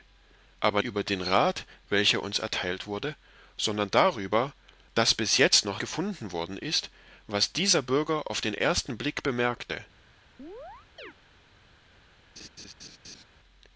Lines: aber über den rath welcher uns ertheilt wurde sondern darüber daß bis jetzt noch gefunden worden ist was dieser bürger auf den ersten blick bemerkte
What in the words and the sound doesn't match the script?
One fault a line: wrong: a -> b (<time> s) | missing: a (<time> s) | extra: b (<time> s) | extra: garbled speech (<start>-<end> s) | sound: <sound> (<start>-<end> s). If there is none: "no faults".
sound: chirp (10.4-11.1 s)
sound: laugh (12.4-13.2 s)